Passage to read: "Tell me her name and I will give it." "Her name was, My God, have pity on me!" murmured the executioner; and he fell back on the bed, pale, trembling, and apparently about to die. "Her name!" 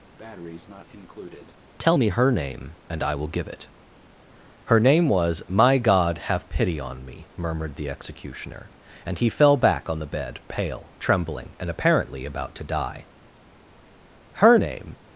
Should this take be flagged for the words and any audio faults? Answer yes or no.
yes